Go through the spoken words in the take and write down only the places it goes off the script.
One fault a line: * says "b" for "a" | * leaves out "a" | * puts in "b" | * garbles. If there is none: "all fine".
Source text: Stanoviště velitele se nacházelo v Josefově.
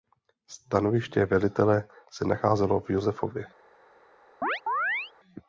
all fine